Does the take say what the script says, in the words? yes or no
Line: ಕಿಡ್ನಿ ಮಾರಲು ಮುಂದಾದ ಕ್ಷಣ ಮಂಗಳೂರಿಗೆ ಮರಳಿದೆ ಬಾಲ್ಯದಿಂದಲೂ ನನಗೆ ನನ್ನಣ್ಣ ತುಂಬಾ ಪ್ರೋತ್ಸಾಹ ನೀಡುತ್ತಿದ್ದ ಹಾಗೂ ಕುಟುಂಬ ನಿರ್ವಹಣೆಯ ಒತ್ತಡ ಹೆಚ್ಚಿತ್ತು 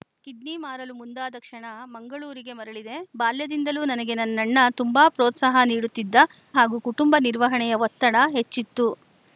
yes